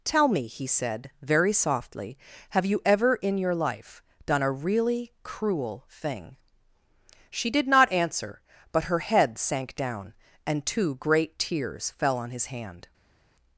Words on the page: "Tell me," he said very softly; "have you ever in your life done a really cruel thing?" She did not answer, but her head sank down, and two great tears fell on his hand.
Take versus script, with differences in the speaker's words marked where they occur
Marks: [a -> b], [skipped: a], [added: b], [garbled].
"Tell me," he said very softly; "have you ever in your life done a really cruel thing?" She did not answer, but her head sank down, and two great tears fell on his hand.